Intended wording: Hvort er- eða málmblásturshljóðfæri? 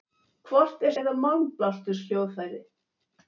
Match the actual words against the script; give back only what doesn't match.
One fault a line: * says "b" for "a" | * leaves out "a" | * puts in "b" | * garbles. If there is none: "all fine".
all fine